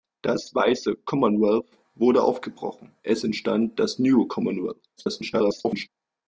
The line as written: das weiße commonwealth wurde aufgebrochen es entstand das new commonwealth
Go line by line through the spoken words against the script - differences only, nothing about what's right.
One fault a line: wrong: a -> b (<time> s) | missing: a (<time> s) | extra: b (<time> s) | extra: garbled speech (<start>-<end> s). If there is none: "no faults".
extra: garbled speech (5.0-5.9 s)